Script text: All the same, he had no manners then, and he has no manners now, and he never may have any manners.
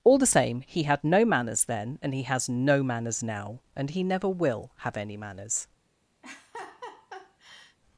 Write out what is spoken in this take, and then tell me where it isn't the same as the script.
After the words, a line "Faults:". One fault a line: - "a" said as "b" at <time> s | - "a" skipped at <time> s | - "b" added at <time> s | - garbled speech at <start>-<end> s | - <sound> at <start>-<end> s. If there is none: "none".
All the same, he had no manners then, and he has no manners now, and he never will have any manners.
Faults:
- "may" said as "will" at 4.3 s
- laugh at 6.2-7.8 s